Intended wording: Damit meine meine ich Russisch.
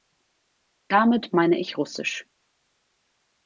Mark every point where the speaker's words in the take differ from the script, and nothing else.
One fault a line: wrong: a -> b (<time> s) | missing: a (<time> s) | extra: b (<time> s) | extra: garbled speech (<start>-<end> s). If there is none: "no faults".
missing: meine (1.6 s)